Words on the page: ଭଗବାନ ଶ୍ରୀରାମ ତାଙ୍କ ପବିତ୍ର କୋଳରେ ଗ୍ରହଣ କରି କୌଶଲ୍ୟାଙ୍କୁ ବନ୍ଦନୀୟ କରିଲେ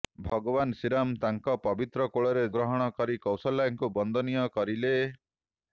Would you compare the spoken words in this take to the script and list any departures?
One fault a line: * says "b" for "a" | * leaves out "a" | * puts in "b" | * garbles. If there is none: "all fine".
all fine